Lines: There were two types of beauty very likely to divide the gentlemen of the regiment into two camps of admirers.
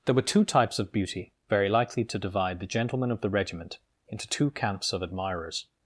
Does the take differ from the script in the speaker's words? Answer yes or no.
no